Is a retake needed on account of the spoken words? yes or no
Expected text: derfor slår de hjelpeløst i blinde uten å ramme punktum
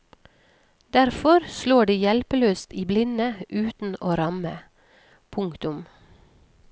no